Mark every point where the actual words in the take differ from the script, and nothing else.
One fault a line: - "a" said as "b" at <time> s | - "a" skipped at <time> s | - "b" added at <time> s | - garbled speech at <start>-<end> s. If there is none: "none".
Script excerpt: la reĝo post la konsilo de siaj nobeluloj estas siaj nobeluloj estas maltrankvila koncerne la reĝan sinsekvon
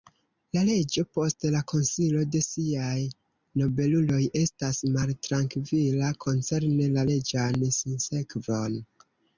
- "siaj nobeluloj estas" skipped at 4.8 s